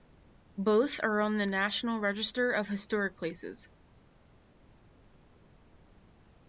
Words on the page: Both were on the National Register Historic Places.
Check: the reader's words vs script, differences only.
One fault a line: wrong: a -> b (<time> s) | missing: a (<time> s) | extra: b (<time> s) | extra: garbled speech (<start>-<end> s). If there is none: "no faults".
wrong: were -> are (1.0 s)
extra: of (2.5 s)